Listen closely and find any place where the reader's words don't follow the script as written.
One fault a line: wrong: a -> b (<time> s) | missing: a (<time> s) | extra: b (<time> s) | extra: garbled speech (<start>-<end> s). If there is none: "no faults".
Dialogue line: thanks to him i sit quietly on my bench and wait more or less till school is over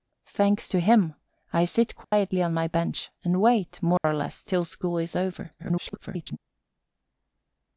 extra: garbled speech (5.6-6.4 s)